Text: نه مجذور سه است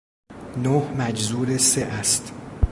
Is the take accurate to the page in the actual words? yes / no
yes